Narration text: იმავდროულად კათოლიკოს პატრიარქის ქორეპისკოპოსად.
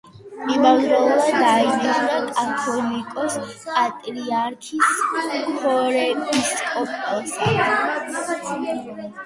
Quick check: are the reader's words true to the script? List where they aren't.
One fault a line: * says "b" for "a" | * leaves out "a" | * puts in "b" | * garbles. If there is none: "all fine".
* puts in "დაინიშნა"